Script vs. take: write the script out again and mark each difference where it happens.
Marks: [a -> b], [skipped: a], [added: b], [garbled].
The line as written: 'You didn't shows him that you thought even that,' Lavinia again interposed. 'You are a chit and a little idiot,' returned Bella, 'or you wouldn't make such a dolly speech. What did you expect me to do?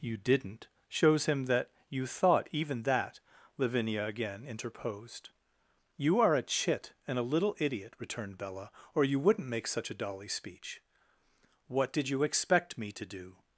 'You didn't shows him that you thought even that,' Lavinia again interposed. 'You are a chit and a little idiot,' returned Bella, 'or you wouldn't make such a dolly speech. What did you expect me to do?